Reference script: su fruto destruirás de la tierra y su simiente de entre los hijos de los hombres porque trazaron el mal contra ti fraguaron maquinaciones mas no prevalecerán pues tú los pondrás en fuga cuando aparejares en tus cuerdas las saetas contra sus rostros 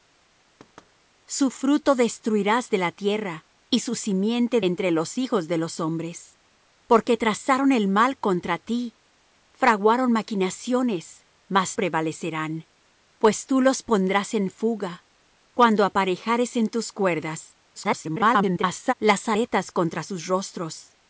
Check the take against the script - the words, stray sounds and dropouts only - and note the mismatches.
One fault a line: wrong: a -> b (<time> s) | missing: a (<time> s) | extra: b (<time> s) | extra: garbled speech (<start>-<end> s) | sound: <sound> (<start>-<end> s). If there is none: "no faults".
sound: thud (0.6-0.9 s)
missing: de (4.6 s)
missing: no (11.8 s)
extra: garbled speech (17.8-18.9 s)